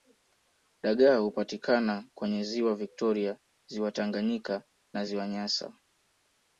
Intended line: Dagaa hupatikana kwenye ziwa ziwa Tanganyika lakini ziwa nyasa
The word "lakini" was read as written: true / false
false